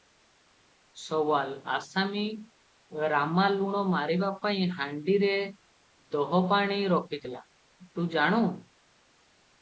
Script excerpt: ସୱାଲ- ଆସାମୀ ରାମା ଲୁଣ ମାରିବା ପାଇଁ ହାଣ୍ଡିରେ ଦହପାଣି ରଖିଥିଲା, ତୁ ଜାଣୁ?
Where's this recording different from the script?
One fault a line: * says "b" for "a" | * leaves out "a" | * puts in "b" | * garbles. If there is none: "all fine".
all fine